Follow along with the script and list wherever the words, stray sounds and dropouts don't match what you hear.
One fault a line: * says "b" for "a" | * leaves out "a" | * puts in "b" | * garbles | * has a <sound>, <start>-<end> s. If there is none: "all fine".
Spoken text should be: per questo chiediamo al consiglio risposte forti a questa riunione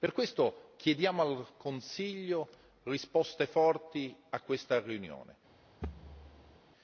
* has a thud, 5.8-6.6 s